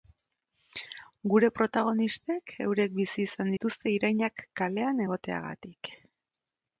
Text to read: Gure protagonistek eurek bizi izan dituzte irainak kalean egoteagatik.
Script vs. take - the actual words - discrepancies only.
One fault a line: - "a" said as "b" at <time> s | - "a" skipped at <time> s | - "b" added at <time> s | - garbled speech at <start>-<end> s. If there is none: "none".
none